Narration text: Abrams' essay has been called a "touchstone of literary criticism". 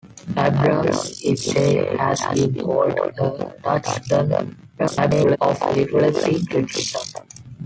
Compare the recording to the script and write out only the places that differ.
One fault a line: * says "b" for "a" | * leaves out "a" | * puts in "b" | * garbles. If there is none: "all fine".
* garbles